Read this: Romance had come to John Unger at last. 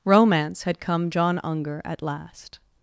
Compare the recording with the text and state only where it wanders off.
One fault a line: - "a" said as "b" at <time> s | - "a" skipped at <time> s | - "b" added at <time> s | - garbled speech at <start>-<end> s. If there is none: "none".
- "to" skipped at 1.1 s